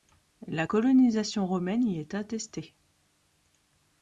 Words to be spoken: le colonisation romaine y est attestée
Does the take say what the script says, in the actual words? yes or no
no